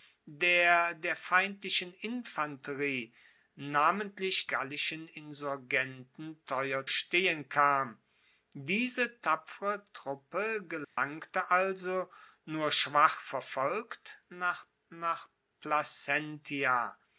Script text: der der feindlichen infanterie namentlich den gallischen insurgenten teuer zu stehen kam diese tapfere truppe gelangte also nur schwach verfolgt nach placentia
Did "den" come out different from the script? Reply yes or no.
yes